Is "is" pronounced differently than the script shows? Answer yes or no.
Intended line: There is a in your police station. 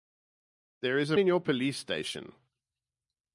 no